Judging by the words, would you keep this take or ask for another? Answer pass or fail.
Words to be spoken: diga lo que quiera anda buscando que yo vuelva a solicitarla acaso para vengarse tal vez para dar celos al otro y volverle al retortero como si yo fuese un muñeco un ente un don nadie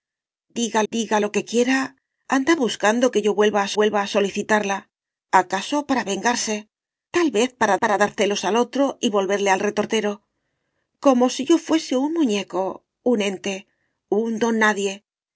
fail